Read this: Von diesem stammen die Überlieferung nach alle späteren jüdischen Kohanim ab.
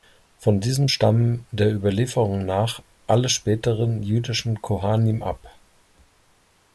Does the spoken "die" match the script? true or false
false